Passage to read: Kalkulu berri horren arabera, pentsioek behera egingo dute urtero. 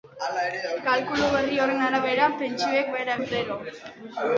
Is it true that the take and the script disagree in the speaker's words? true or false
true